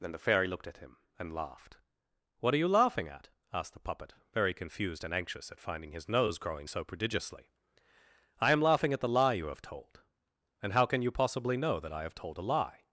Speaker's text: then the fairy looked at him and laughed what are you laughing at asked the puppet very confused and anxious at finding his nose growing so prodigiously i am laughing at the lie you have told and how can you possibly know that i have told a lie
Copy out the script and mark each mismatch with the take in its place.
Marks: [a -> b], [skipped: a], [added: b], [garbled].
then the fairy looked at him and laughed what are you laughing at asked the puppet very confused and anxious at finding his nose growing so prodigiously i am laughing at the lie you have told and how can you possibly know that i have told a lie